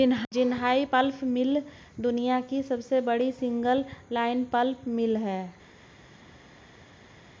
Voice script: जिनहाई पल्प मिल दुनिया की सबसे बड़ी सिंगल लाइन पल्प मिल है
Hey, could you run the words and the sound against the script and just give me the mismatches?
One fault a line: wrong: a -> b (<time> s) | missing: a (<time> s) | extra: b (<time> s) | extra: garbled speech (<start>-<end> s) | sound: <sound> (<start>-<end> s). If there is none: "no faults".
no faults